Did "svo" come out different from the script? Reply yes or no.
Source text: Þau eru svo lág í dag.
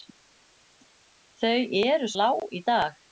yes